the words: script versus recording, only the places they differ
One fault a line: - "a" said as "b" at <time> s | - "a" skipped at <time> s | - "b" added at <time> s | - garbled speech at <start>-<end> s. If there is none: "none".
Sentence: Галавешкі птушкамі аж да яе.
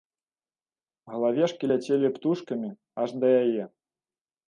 - "ляцелі" added at 1.7 s